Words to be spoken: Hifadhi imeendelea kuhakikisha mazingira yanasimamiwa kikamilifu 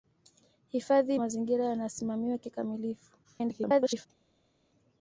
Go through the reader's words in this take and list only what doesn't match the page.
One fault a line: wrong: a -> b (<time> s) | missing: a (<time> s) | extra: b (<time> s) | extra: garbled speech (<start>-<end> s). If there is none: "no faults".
missing: imeendelea kuhakikisha (1.1 s)
extra: garbled speech (3.2-4.1 s)